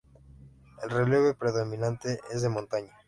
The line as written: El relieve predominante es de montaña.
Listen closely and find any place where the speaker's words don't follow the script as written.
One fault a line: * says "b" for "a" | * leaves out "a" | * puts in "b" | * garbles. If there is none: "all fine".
all fine